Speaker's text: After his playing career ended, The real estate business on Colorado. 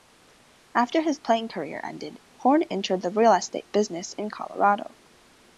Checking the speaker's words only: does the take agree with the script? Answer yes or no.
no